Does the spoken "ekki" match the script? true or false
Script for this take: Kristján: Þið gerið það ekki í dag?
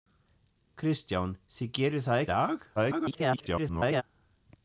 false